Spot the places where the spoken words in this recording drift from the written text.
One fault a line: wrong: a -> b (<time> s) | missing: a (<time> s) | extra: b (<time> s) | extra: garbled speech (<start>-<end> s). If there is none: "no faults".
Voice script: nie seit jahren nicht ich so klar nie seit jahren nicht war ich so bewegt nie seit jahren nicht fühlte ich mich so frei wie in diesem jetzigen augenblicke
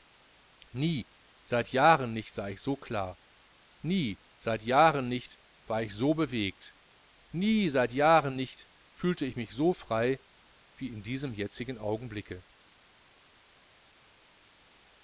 extra: sah (2.3 s)